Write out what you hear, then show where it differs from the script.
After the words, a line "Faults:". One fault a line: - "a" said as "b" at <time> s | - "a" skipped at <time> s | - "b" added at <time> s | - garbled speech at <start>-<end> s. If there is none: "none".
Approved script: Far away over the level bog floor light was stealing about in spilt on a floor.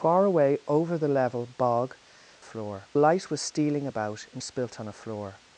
Far away over the level bog floor light was stealing about in spilt on a floor.
Faults:
none